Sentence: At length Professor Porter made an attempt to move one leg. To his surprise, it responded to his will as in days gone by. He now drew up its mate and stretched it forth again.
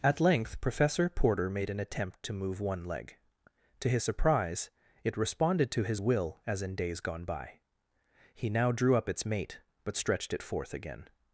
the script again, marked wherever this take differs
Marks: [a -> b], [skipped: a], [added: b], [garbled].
At length Professor Porter made an attempt to move one leg. To his surprise, it responded to his will as in days gone by. He now drew up its mate [and -> but] stretched it forth again.